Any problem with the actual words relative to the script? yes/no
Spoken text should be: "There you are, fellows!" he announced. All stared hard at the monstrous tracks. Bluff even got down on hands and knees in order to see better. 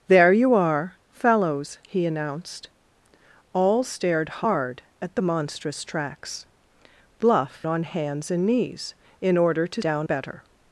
yes